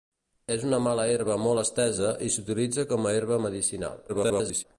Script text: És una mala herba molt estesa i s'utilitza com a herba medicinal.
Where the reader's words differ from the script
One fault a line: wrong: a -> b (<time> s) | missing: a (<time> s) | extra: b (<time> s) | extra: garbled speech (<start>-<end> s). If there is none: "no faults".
extra: garbled speech (4.1-4.6 s)